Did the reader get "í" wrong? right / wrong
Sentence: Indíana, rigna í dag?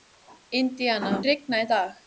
right